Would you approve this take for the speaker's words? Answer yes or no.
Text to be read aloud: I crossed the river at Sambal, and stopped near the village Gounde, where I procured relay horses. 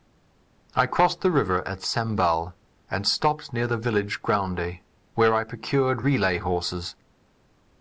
yes